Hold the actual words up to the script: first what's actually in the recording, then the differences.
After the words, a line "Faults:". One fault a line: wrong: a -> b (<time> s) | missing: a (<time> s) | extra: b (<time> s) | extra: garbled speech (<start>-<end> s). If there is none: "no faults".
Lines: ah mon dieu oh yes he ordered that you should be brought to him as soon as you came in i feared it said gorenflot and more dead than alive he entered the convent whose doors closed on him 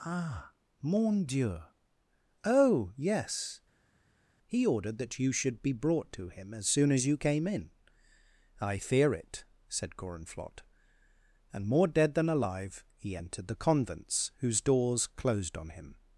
ah mon dieu oh yes he ordered that you should be brought to him as soon as you came in i fear it said gorenflot and more dead than alive he entered the convents whose doors closed on him
Faults:
wrong: feared -> fear (8.8 s)
wrong: convent -> convents (13.5 s)